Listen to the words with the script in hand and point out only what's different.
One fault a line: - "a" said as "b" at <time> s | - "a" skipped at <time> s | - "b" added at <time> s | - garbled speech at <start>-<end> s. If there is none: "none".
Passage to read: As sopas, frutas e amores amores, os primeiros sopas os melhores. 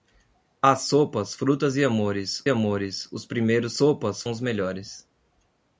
none